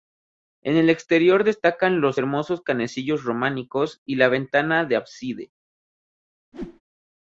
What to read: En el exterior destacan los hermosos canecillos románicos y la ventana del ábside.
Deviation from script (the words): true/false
false